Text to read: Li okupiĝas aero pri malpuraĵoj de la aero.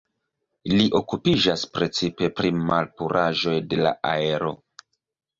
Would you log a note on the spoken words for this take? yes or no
yes